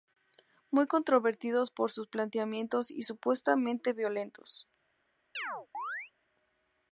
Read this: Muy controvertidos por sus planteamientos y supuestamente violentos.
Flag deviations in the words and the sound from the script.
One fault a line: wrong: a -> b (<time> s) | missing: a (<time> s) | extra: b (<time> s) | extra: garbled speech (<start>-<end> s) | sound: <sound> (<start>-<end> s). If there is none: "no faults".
sound: chirp (5.3-6.1 s)